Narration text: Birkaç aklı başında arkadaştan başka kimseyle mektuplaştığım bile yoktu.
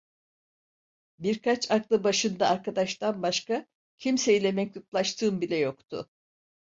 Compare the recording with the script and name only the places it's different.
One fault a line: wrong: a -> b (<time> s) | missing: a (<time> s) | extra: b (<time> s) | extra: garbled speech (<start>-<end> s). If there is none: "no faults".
no faults